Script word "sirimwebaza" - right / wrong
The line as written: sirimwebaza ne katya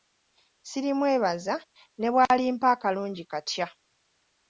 right